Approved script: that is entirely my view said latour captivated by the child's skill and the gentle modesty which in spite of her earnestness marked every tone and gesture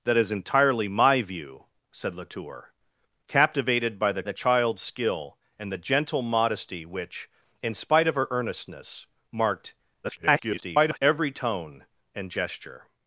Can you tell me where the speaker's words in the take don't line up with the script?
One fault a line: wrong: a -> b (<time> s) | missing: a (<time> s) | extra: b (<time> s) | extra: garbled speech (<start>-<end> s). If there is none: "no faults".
extra: the (4.2 s)
extra: garbled speech (10.0-11.0 s)